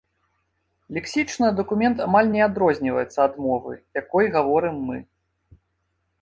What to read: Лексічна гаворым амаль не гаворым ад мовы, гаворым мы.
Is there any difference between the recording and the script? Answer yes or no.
yes